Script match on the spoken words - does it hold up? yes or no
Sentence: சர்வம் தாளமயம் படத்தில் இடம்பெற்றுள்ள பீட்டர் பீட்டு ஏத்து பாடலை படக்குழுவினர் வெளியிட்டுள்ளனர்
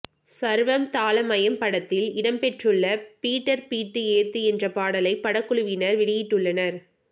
no